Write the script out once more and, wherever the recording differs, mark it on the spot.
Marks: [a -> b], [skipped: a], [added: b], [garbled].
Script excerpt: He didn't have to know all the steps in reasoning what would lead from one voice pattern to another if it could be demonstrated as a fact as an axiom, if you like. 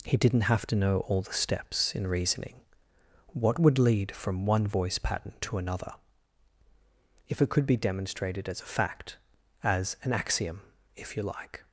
He didn't have to know all the steps in reasoning what would lead from one voice pattern to another if it could be demonstrated as a fact as an axiom, if you like.